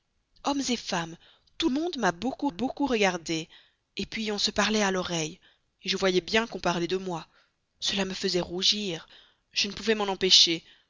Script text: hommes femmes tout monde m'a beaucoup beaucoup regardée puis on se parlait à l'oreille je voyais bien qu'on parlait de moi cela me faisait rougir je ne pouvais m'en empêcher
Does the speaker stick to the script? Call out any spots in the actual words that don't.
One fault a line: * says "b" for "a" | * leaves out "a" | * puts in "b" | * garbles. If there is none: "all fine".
all fine